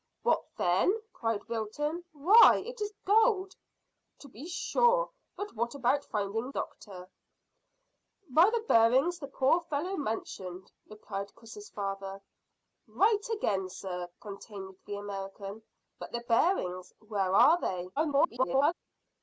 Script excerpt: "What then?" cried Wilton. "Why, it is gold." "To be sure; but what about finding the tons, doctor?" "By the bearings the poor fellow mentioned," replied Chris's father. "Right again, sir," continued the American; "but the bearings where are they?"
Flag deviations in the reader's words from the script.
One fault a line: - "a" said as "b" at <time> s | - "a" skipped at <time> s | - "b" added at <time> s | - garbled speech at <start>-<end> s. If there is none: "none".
- "the tons" skipped at 6.5 s
- garbled speech at 18.0-18.7 s